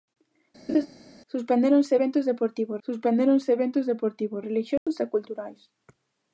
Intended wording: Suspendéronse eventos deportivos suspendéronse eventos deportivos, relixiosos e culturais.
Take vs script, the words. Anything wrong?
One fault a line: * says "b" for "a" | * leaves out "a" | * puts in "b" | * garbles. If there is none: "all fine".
all fine